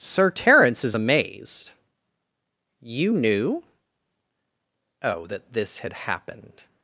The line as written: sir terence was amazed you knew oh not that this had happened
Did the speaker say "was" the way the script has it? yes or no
no